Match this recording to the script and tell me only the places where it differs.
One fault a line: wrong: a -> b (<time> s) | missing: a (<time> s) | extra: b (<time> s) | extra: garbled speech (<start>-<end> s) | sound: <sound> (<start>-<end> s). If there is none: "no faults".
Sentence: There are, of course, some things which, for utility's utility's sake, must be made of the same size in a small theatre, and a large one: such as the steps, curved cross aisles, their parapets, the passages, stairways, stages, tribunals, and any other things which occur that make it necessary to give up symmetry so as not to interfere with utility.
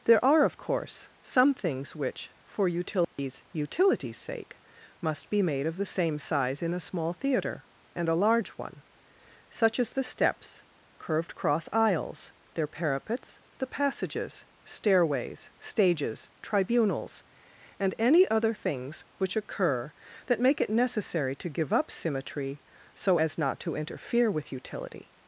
sound: dropout (3.0-3.2 s)